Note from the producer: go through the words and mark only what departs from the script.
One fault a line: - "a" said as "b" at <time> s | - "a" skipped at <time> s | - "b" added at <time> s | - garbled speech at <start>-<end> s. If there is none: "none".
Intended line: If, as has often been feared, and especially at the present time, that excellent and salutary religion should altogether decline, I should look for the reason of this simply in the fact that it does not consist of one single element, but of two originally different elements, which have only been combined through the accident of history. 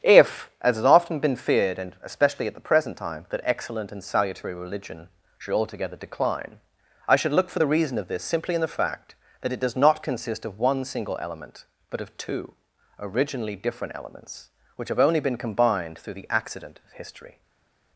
none